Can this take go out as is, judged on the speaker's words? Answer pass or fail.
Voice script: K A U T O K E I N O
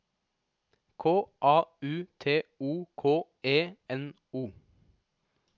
fail